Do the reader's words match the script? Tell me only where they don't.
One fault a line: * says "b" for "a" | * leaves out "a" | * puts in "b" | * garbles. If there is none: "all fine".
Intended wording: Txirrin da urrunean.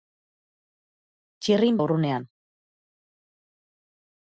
all fine